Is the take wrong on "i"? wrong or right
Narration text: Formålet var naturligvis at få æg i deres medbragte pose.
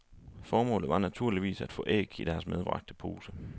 right